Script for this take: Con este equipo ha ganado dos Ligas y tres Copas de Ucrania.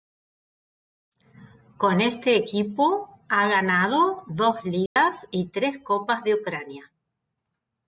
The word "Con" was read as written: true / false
true